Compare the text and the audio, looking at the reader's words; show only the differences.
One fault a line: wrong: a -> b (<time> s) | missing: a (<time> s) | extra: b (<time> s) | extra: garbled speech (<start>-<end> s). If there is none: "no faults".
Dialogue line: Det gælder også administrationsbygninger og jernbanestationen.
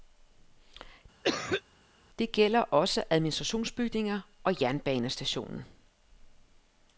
no faults